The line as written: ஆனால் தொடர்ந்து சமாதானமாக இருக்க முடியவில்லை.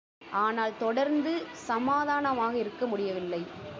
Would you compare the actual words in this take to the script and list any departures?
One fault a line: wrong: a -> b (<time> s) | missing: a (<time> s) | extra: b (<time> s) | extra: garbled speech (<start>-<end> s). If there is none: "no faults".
no faults